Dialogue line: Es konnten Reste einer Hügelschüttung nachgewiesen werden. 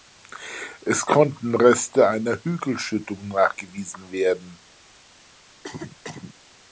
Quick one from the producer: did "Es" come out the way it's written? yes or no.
yes